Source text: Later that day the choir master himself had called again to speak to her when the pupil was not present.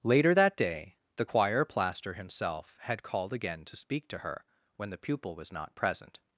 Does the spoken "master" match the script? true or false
false